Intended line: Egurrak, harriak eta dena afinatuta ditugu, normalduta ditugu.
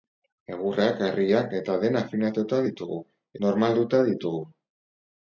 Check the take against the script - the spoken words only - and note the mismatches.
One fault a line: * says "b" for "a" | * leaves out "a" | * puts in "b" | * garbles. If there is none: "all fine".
all fine